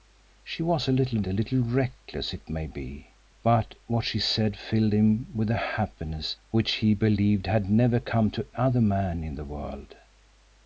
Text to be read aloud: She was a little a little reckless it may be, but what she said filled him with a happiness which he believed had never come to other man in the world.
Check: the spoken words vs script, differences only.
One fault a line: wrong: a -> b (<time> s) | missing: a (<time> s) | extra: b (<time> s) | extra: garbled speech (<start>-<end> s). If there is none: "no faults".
no faults